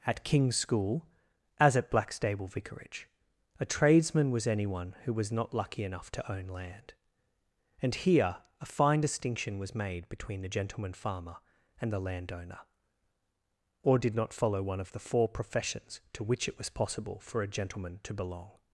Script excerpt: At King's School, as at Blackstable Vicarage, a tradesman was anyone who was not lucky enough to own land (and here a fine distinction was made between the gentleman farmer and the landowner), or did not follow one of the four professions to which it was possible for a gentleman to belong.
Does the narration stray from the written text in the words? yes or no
no